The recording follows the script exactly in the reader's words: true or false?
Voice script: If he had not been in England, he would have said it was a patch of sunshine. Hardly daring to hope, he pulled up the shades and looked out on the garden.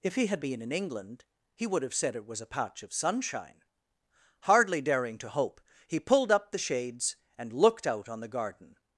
false